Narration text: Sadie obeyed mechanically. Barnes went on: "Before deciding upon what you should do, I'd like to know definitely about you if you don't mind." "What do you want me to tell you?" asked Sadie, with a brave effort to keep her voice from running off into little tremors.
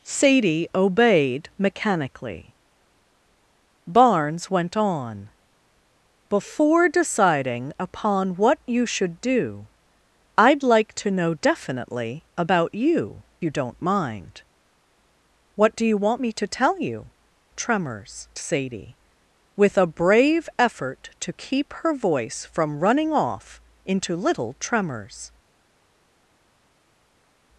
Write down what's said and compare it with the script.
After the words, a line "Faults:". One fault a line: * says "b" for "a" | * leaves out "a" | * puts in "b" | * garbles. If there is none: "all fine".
Sadie obeyed mechanically. Barnes went on: "Before deciding upon what you should do, I'd like to know definitely about you you don't mind." "What do you want me to tell you?" tremors Sadie, with a brave effort to keep her voice from running off into little tremors.
Faults:
* leaves out "if"
* says "tremors" for "asked"